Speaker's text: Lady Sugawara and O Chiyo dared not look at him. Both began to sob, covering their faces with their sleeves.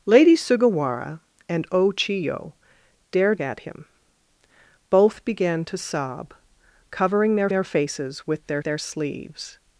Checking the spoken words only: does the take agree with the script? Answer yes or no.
no